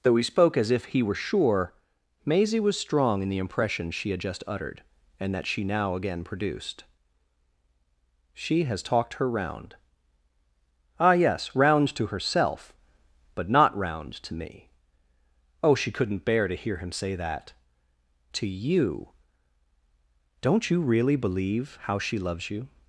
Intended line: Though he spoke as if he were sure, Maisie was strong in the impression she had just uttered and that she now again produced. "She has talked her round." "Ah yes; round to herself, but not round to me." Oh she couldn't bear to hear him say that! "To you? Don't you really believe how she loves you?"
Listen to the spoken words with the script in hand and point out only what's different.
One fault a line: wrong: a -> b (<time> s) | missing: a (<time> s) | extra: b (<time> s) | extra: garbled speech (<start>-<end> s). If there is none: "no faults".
no faults